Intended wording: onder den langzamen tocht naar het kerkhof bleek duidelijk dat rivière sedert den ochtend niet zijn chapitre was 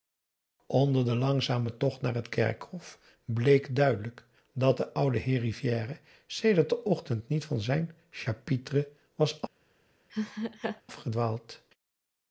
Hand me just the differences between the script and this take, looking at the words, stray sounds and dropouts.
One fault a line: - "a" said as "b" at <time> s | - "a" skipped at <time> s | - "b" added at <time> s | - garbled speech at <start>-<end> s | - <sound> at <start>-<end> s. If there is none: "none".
- "de oude heer" added at 4.8 s
- "van" added at 7.5 s
- laugh at 10.1-10.8 s